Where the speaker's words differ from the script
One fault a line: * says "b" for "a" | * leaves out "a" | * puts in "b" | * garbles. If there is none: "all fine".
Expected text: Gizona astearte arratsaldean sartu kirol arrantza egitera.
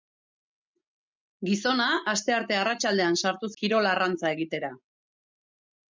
all fine